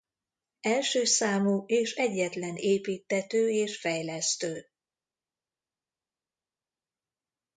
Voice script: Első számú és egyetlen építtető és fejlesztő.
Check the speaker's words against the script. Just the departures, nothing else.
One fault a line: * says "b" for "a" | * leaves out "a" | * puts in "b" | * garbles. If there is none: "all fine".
all fine